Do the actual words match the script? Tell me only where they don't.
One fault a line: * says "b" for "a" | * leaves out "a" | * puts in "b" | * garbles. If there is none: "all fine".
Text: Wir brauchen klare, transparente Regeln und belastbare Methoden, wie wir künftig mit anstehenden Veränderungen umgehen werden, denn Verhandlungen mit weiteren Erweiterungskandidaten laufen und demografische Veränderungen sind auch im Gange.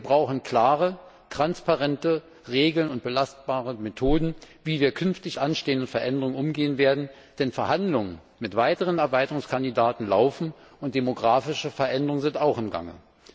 * leaves out "mit"